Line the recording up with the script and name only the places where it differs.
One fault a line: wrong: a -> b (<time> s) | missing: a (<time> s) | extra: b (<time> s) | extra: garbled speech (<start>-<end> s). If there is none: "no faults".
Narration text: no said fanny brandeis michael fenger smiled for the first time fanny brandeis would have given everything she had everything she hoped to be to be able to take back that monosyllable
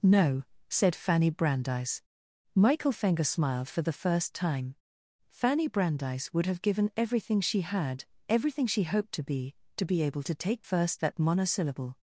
wrong: back -> first (10.6 s)